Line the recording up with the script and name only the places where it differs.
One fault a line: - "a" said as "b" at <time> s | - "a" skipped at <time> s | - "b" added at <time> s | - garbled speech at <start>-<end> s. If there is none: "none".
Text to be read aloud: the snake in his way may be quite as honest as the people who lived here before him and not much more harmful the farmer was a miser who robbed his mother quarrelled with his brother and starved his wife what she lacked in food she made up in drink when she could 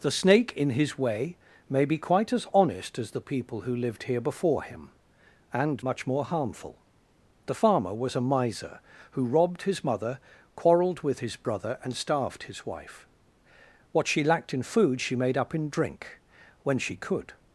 - "not" skipped at 5.8 s